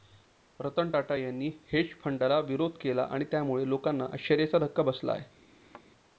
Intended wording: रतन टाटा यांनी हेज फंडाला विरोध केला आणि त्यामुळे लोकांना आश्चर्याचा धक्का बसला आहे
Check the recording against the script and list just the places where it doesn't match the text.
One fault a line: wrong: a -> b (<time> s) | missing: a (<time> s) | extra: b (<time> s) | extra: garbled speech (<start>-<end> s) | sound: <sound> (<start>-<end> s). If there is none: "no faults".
sound: thud (5.5-5.9 s)